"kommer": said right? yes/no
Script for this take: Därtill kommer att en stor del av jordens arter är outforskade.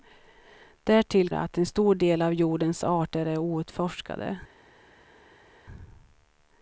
no